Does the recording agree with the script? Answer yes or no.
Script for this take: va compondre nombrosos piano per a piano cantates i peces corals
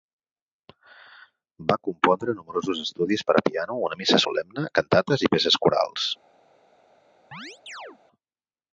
no